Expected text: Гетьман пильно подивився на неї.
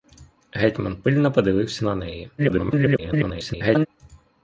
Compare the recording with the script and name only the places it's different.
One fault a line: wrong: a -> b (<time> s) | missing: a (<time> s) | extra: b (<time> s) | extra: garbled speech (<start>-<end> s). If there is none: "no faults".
extra: garbled speech (2.4-3.9 s)